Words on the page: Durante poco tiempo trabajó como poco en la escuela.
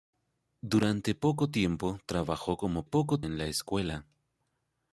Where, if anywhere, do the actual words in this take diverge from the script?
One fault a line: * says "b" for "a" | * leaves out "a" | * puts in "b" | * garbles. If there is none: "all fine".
all fine